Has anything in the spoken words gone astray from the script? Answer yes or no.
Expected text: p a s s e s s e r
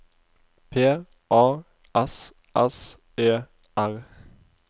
yes